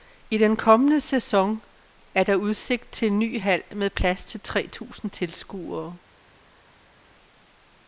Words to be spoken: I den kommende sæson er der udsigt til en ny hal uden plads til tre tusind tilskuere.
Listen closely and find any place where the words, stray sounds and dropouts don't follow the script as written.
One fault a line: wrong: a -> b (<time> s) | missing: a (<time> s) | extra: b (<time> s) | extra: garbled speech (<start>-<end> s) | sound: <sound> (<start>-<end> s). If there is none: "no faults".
wrong: uden -> med (3.8 s)